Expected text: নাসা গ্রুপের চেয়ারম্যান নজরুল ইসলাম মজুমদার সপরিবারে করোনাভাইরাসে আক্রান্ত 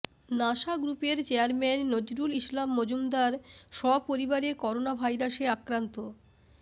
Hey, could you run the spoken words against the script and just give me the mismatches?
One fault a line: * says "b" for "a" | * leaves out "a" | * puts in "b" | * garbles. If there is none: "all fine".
all fine